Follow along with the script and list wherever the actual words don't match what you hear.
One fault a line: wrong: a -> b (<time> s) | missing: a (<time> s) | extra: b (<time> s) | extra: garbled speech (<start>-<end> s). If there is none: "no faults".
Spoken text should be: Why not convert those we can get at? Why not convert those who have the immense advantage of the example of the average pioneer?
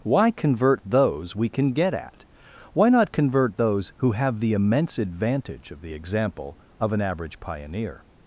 missing: not (0.3 s)
wrong: the -> an (6.9 s)